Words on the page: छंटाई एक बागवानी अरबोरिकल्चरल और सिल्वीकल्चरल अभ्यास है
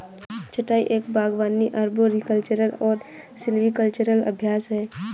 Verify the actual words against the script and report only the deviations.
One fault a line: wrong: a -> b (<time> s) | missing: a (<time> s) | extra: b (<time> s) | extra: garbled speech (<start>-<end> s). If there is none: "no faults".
no faults